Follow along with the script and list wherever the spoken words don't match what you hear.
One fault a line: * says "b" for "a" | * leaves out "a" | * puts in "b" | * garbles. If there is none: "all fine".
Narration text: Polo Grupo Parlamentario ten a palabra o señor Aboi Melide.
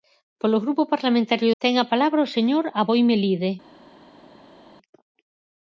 all fine